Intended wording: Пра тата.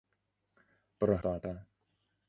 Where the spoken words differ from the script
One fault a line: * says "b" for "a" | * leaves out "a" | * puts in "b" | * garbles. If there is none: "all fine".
all fine